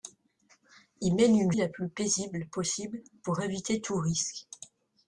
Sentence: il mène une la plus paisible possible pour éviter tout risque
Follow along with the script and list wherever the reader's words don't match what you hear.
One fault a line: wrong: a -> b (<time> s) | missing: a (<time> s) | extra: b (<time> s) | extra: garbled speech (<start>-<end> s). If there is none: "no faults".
no faults